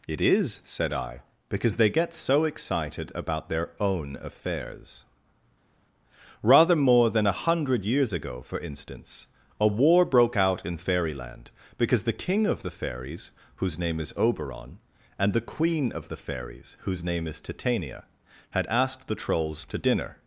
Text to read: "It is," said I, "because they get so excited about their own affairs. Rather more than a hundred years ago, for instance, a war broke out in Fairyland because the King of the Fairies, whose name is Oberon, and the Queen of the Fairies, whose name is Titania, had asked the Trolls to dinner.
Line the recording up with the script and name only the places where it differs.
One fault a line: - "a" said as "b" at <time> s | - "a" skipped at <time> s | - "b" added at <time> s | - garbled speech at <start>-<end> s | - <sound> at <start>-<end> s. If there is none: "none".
none